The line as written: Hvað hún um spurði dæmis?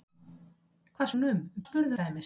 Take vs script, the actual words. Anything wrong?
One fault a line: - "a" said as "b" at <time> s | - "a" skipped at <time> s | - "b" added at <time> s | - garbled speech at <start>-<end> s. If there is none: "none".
none